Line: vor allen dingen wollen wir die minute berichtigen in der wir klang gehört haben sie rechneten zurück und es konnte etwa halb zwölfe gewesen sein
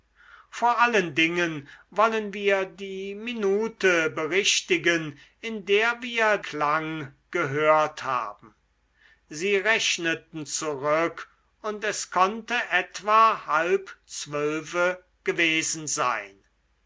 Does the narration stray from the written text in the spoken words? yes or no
no